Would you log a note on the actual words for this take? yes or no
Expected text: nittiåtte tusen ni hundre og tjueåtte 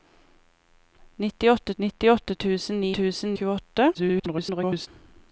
yes